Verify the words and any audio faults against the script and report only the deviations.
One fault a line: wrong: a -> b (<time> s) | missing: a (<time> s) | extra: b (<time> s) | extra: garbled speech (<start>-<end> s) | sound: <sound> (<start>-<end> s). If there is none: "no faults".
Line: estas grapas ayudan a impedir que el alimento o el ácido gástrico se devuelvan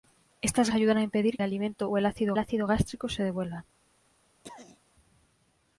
missing: grapas (0.7 s)
missing: que (1.4 s)
extra: ácido (2.4 s)
sound: throat clearing (4.4-4.8 s)